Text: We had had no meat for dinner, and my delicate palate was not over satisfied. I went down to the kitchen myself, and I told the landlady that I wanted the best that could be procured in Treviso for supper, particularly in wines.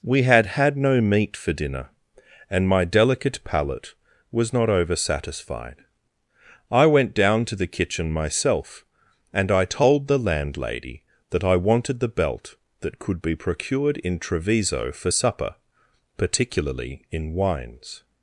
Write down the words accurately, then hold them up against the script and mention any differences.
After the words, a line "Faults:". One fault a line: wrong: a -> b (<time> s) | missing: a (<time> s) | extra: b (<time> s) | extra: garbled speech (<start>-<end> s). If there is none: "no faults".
We had had no meat for dinner, and my delicate palate was not over satisfied. I went down to the kitchen myself, and I told the landlady that I wanted the belt that could be procured in Treviso for supper, particularly in wines.
Faults:
wrong: best -> belt (12.1 s)